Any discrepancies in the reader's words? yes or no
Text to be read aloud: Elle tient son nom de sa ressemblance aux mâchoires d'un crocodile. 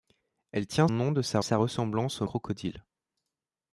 yes